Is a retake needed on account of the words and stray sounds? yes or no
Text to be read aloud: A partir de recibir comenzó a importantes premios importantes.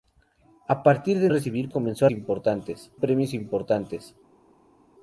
no